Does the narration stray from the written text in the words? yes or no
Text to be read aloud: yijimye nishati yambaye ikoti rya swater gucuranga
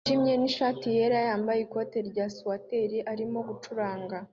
yes